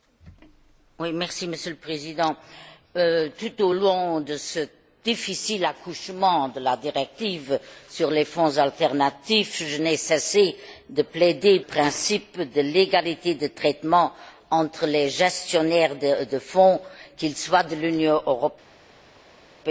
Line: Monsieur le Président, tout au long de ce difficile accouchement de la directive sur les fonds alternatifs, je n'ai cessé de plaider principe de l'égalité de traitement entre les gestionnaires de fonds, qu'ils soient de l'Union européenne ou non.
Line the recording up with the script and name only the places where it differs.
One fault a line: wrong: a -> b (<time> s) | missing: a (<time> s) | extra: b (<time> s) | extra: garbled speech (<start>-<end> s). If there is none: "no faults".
no faults